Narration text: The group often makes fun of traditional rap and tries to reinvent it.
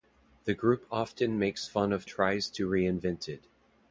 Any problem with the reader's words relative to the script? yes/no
yes